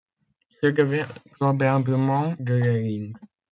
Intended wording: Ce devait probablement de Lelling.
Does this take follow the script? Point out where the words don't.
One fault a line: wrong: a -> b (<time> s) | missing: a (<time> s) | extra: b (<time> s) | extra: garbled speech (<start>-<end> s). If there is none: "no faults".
no faults